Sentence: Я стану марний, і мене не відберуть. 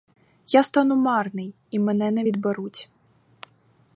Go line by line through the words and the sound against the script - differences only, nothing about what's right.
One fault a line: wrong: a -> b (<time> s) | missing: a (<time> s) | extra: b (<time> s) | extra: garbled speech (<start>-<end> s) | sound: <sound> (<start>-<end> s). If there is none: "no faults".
no faults